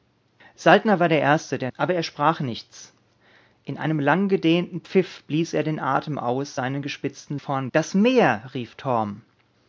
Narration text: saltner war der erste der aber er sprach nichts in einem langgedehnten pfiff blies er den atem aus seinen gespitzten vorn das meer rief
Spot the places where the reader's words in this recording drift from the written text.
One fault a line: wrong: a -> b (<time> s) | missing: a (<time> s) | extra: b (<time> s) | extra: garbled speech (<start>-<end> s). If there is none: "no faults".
no faults